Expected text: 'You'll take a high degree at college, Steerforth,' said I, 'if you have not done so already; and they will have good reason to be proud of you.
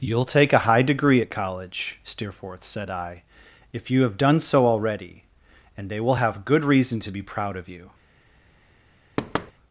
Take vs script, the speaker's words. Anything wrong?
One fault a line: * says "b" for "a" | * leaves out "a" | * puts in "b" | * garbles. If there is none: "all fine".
* leaves out "not"